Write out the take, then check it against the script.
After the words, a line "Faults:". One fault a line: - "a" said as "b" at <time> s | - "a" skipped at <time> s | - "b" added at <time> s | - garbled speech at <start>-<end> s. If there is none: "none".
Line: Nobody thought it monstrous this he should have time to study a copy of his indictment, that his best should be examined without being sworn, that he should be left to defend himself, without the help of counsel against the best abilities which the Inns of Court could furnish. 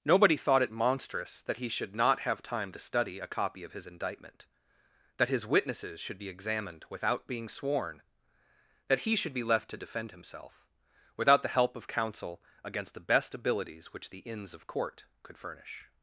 Nobody thought it monstrous that he should not have time to study a copy of his indictment, that his witnesses should be examined without being sworn, that he should be left to defend himself, without the help of counsel against the best abilities which the Inns of Court could furnish.
Faults:
- "this" said as "that" at 1.4 s
- "not" added at 1.9 s
- "best" said as "witnesses" at 5.4 s